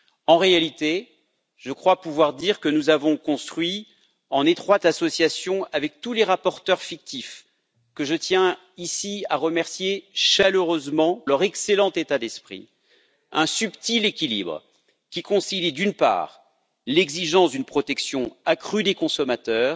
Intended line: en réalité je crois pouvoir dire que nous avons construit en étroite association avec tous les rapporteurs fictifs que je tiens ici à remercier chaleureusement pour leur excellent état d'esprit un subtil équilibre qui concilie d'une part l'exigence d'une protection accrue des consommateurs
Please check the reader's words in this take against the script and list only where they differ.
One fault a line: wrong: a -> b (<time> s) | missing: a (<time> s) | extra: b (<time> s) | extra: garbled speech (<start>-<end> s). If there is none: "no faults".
missing: pour (11.2 s)